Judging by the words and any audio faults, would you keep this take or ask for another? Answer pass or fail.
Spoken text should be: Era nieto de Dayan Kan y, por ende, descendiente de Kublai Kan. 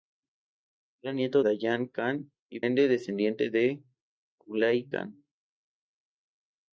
fail